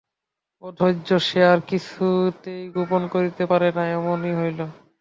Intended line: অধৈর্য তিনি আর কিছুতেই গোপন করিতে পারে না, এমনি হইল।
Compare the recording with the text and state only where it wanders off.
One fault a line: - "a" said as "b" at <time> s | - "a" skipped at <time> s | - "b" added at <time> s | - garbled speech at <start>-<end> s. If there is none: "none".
- "তিনি" said as "সে" at 1.3 s